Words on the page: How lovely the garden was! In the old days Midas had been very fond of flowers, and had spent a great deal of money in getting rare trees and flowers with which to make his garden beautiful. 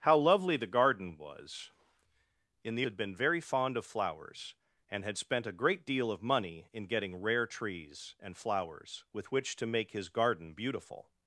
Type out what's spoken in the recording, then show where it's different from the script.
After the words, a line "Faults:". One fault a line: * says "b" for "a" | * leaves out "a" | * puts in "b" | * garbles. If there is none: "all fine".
How lovely the garden was! In the had been very fond of flowers, and had spent a great deal of money in getting rare trees and flowers with which to make his garden beautiful.
Faults:
* leaves out "old days Midas"